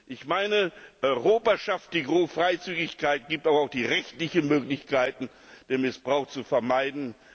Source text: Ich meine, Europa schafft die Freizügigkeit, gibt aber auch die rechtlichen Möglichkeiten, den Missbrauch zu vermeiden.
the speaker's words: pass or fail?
pass